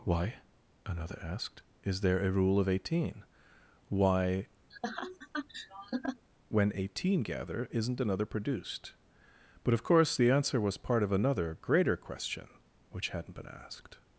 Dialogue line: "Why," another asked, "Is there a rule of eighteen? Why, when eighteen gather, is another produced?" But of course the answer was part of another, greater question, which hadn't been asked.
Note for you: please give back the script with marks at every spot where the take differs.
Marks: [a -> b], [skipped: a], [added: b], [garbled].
"Why," another asked, "Is there a rule of eighteen? Why, when eighteen gather, [is -> isn't] another produced?" But of course the answer was part of another, greater question, which hadn't been asked.